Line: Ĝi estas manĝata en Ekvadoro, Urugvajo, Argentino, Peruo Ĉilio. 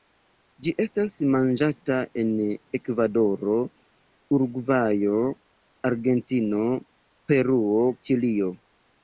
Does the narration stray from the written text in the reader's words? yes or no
no